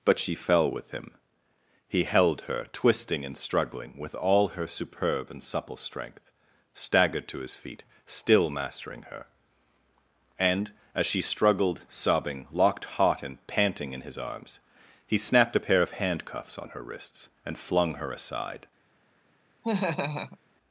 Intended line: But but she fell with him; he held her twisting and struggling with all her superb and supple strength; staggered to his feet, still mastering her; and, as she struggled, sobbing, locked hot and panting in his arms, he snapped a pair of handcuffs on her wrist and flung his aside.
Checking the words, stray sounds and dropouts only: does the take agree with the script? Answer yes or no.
no